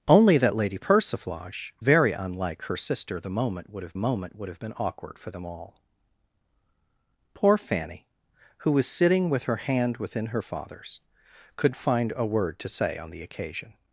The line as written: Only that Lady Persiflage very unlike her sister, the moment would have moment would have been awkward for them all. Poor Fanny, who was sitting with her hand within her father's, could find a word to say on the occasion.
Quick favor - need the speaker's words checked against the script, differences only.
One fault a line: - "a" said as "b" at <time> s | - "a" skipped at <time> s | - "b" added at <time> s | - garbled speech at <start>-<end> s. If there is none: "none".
none